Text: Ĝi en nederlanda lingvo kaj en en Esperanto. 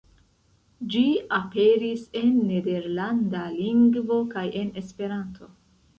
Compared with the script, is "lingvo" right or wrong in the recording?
right